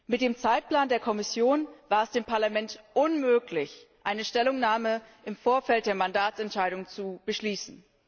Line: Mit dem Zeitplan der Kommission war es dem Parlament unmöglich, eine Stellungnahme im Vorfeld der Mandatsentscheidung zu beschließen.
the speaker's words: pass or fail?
pass